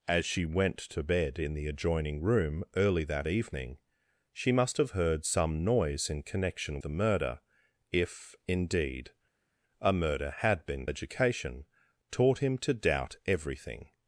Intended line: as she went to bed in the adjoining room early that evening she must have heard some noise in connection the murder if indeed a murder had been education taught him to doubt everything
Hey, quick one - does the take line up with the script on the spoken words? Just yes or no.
yes